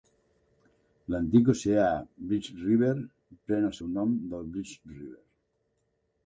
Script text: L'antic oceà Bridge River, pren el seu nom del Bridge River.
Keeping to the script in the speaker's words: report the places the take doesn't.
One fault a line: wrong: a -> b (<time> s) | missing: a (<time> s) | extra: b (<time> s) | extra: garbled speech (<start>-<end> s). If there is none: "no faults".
no faults